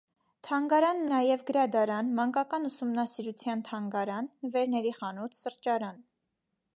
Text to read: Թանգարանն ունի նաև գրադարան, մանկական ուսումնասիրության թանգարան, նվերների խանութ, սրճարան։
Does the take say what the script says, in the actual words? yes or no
no